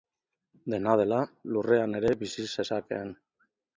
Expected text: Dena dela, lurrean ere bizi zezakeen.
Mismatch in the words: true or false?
false